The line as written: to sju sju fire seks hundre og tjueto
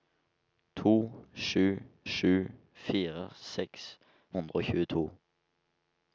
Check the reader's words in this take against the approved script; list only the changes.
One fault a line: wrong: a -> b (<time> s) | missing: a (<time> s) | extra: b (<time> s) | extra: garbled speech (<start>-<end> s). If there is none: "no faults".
no faults